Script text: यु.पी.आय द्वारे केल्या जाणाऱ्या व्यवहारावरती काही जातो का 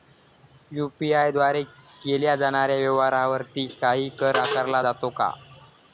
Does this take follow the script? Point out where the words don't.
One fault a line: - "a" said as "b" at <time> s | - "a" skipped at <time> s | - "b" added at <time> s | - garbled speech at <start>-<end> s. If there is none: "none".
- "कर आकारला" added at 4.2 s